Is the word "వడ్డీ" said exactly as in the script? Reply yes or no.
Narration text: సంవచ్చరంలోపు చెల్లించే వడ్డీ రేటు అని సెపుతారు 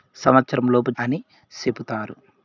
no